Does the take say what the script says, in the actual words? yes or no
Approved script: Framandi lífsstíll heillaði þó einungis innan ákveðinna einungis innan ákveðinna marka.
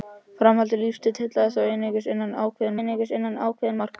yes